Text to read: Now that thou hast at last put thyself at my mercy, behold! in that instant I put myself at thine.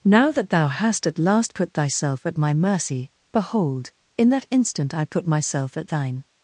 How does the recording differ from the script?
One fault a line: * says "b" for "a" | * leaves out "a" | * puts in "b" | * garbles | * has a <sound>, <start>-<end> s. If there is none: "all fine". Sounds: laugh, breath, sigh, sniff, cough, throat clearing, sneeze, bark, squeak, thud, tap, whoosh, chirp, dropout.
all fine